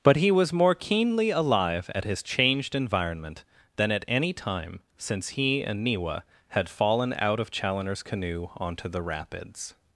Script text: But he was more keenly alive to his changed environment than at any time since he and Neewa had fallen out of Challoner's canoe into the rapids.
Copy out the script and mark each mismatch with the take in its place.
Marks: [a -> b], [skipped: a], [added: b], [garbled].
But he was more keenly alive [to -> at] his changed environment than at any time since he and Neewa had fallen out of Challoner's canoe [into -> onto] the rapids.